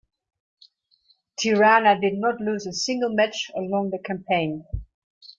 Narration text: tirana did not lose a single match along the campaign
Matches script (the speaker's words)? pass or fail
pass